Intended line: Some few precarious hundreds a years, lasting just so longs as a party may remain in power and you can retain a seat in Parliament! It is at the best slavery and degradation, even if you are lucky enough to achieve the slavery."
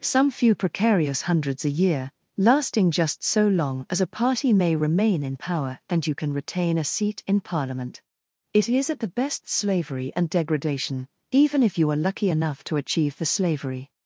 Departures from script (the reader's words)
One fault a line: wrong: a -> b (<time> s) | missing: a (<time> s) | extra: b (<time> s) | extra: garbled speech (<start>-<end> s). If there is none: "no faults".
wrong: years -> year (1.7 s)
wrong: longs -> long (3.5 s)